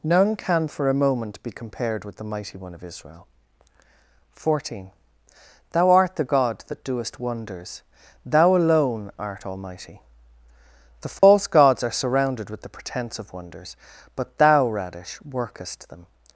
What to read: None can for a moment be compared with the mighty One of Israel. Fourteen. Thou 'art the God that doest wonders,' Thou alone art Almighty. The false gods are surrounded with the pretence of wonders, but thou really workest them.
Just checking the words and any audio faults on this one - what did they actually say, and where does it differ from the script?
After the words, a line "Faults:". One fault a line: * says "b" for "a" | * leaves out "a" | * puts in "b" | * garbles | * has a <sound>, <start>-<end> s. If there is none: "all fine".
None can for a moment be compared with the mighty One of Israel. Fourteen. Thou 'art the God that doest wonders,' Thou alone art Almighty. The false gods are surrounded with the pretence of wonders, but thou radish workest them.
Faults:
* has a dropout, 11.2-11.2 s
* says "radish" for "really"